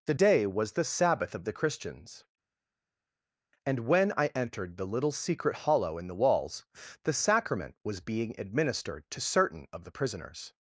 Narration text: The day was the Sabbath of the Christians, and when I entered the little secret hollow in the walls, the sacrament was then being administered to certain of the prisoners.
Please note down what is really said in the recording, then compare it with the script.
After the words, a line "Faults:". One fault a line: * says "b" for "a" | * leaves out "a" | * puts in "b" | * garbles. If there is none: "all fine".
The day was the Sabbath of the Christians, and when I entered the little secret hollow in the walls, the sacrament was being administered to certain of the prisoners.
Faults:
* leaves out "then"